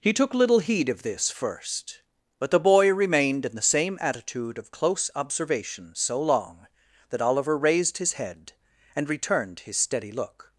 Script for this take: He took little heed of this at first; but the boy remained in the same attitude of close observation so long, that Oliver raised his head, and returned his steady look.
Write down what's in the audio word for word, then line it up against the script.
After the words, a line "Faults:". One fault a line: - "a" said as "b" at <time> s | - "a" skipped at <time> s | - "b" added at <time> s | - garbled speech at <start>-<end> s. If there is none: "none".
He took little heed of this first; but the boy remained in the same attitude of close observation so long, that Oliver raised his head, and returned his steady look.
Faults:
- "at" skipped at 1.3 s